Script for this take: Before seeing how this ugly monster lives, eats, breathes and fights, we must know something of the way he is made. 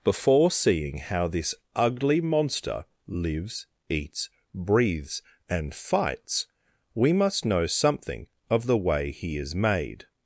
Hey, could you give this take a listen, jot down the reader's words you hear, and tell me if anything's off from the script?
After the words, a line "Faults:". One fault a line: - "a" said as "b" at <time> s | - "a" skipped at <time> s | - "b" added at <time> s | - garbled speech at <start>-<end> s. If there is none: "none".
Before seeing how this ugly monster lives, eats, breathes and fights, we must know something of the way he is made.
Faults:
none